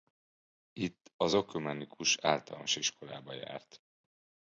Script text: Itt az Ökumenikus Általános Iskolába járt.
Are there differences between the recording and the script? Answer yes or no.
no